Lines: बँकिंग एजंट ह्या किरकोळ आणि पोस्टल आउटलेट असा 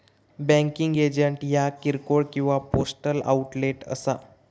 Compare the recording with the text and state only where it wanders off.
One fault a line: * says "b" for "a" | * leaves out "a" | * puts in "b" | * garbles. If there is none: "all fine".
* says "किंवा" for "आणि"